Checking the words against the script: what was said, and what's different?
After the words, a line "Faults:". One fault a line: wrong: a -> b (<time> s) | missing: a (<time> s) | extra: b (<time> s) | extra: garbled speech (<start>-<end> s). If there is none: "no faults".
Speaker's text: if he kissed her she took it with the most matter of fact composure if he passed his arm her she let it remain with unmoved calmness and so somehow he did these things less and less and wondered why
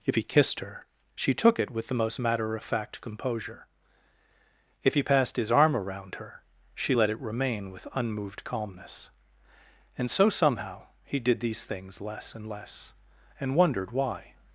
if he kissed her she took it with the most matter of fact composure if he passed his arm around her she let it remain with unmoved calmness and so somehow he did these things less and less and wondered why
Faults:
extra: around (5.7 s)